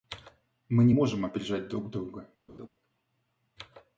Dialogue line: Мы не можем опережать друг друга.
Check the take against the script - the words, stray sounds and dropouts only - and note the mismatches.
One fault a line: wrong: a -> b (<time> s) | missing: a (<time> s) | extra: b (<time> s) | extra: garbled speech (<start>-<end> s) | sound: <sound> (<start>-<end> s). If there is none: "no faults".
sound: laugh (2.5-2.7 s)